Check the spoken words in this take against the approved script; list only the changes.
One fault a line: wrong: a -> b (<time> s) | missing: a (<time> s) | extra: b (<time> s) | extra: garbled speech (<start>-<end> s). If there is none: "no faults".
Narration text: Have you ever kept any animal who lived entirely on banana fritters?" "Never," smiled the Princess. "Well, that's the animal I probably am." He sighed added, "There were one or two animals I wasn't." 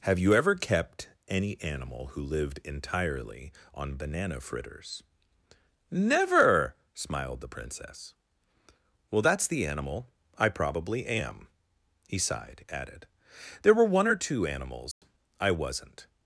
no faults